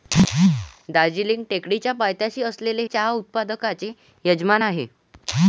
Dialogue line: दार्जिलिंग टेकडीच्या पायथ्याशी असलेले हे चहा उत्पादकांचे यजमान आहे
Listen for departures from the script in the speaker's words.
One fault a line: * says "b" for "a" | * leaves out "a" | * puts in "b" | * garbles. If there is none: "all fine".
* leaves out "हे"